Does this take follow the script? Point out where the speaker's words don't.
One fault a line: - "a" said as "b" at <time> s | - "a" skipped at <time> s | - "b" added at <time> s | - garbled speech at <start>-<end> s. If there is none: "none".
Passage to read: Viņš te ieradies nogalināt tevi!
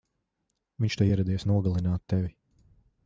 none